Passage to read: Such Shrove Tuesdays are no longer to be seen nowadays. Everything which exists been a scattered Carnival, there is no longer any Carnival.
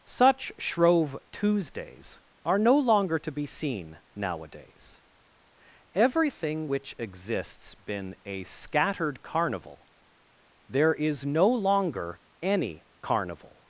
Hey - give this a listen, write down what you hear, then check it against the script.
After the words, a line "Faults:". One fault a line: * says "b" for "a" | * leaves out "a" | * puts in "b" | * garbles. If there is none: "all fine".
Such Shrove Tuesdays are no longer to be seen nowadays. Everything which exists been a scattered Carnival, there is no longer any Carnival.
Faults:
all fine